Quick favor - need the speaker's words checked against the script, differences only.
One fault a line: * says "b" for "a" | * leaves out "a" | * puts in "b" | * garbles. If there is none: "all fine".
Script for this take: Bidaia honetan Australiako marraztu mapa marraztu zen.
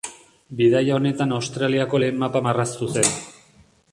* says "lehen" for "marraztu"